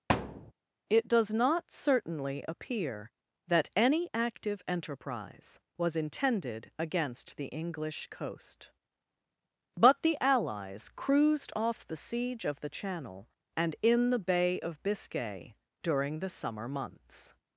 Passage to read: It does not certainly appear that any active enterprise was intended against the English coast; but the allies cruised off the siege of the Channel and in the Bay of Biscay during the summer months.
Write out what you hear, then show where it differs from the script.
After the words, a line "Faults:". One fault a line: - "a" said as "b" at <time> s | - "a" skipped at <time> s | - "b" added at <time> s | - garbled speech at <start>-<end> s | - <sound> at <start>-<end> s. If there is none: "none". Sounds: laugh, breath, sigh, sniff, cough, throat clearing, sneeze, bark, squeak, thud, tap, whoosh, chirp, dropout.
It does not certainly appear that any active enterprise was intended against the English coast; but the allies cruised off the siege of the Channel and in the Bay of Biscay during the summer months.
Faults:
- thud at 0.1-0.5 s